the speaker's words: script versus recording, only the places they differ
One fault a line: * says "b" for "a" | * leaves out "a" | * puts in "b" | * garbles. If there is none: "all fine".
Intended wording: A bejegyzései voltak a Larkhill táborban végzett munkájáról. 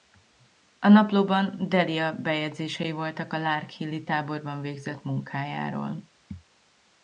* puts in "naplóban Delia"
* puts in "i"